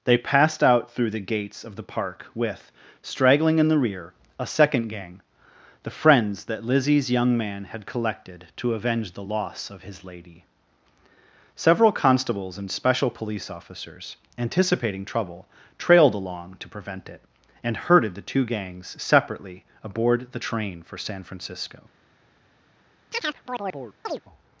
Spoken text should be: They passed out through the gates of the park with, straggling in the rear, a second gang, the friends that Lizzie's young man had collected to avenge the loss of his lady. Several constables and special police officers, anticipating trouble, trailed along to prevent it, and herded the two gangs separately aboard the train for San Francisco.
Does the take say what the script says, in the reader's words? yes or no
yes